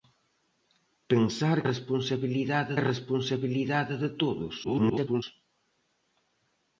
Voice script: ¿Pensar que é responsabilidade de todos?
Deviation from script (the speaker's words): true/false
true